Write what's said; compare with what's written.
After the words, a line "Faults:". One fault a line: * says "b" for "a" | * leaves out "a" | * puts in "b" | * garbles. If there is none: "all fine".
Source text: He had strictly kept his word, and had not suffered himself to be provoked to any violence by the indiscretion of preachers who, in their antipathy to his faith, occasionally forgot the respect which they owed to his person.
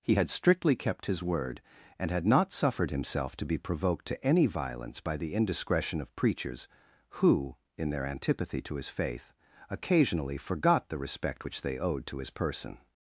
He had strictly kept his word, and had not suffered himself to be provoked to any violence by the indiscretion of preachers who, in their antipathy to his faith, occasionally forgot the respect which they owed to his person.
Faults:
all fine